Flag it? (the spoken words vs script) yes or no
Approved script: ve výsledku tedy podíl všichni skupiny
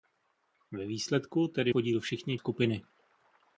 no